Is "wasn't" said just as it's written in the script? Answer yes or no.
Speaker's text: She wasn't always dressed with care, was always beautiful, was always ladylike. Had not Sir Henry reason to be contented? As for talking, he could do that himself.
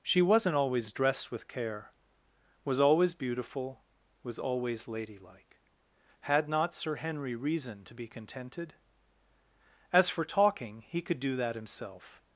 yes